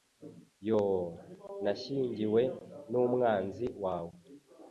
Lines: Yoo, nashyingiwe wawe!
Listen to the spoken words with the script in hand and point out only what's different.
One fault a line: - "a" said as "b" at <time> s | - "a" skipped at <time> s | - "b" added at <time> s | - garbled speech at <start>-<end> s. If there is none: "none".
- "n'umwanzi" added at 2.9 s